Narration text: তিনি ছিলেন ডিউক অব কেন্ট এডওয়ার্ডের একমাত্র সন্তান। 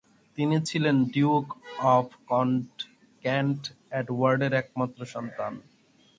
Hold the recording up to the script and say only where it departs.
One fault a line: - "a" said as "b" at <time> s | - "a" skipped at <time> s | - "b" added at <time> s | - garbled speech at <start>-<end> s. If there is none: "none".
none